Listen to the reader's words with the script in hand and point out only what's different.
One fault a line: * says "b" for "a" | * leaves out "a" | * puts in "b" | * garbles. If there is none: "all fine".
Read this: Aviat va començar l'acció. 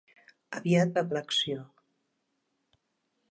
* leaves out "començar"